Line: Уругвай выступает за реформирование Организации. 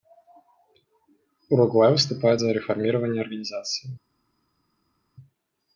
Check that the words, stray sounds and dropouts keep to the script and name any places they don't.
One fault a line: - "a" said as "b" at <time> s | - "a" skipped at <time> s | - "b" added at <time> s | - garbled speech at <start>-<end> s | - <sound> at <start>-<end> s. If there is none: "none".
none